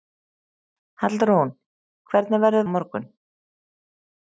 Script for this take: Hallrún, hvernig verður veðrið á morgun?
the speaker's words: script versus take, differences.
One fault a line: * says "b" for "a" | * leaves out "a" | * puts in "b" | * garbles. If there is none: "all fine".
* leaves out "veðrið"